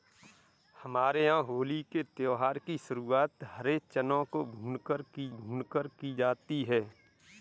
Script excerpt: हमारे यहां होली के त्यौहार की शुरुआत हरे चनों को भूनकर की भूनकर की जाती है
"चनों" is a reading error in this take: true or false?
false